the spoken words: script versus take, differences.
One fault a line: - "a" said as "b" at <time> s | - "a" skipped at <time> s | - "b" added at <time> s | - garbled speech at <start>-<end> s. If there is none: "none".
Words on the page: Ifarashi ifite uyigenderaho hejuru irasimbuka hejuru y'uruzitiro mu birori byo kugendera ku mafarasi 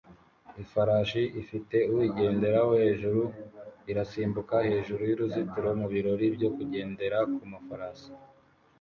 none